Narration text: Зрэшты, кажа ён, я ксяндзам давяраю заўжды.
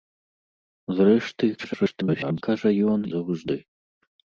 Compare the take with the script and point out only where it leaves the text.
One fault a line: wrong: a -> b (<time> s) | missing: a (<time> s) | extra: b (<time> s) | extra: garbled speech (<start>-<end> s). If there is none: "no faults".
extra: garbled speech (1.6-2.4 s)
missing: я ксяндзам давяраю (3.0 s)